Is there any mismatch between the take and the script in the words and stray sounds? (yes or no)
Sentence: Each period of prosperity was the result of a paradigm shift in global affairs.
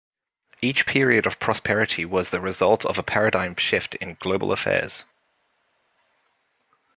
no